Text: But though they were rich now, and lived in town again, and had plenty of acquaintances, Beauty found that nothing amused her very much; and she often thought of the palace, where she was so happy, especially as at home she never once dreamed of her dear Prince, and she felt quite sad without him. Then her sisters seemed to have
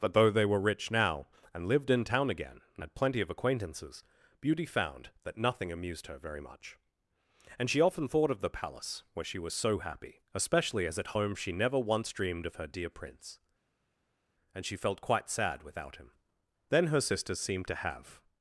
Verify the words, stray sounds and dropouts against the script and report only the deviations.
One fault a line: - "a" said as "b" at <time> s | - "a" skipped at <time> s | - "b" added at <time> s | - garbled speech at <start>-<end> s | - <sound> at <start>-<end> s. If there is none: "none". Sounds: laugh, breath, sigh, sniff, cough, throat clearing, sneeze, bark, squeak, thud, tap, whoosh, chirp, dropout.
none